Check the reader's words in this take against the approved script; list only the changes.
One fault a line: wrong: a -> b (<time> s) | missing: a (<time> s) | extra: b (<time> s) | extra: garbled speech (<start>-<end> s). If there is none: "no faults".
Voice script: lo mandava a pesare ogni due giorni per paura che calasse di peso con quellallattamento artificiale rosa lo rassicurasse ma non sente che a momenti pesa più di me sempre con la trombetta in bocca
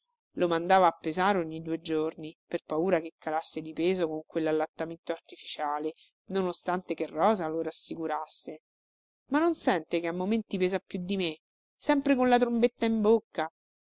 extra: non ostante che (6.3 s)